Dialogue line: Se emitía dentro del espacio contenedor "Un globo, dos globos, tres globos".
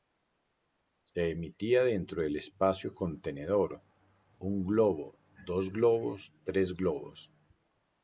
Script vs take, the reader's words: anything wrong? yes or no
no